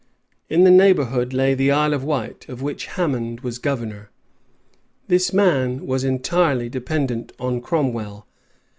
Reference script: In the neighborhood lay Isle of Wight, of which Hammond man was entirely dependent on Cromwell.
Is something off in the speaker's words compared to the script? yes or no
yes